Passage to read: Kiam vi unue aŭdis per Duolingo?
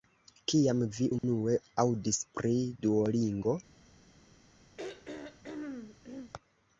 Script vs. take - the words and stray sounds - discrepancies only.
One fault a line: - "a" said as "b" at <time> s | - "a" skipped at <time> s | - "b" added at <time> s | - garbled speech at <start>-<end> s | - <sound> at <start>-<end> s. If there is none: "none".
- dropout at 1.2-1.2 s
- "per" said as "pri" at 2.4 s
- throat clearing at 4.8-6.3 s